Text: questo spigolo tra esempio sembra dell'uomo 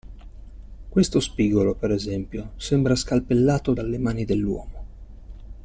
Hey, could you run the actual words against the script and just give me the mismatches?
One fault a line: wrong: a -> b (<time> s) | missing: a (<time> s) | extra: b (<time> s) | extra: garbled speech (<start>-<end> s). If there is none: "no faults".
wrong: tra -> per (1.8 s)
extra: scalpellato dalle mani (3.0 s)